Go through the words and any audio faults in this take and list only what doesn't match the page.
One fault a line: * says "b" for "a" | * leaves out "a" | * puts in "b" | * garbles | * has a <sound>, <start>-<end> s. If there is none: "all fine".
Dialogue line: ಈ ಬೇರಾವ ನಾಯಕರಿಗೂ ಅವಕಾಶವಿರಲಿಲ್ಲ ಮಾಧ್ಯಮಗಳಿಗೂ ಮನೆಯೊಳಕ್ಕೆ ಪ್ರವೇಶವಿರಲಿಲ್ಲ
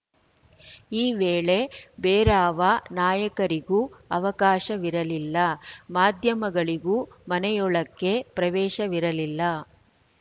* puts in "ವೇಳೆ"